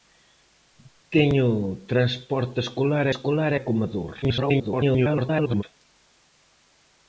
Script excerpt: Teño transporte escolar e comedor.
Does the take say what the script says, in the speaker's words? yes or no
no